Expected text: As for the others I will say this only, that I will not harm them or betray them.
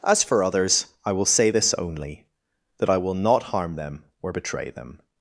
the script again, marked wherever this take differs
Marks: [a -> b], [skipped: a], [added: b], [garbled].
As for [skipped: the] others I will say this only, that I will not harm them or betray them.